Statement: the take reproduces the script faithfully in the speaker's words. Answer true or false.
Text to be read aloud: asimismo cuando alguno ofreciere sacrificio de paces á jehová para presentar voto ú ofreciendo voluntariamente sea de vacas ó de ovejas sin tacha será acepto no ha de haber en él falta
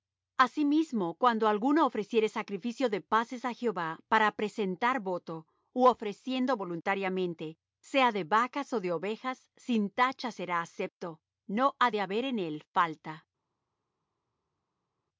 true